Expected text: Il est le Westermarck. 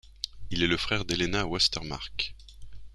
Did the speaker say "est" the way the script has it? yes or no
yes